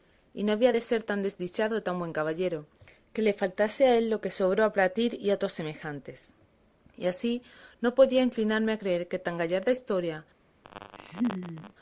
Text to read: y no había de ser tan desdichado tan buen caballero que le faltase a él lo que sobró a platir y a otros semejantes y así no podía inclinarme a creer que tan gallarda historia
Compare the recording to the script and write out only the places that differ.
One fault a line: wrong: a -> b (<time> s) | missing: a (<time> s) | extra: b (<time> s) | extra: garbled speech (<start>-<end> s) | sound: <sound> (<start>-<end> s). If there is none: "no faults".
sound: laugh (10.6-11.7 s)